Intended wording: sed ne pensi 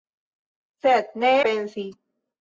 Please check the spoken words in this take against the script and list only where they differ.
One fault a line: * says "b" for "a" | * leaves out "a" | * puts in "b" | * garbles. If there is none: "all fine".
all fine